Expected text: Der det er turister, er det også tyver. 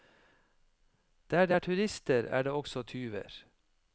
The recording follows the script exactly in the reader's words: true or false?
true